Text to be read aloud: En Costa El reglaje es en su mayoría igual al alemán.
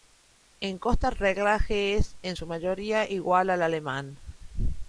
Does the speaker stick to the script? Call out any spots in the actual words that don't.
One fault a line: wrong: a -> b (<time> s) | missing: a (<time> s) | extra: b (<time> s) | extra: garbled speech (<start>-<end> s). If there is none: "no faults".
no faults